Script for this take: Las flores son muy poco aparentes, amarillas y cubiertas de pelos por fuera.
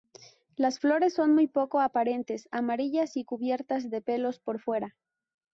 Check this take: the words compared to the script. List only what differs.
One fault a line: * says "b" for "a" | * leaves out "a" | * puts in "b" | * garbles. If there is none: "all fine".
all fine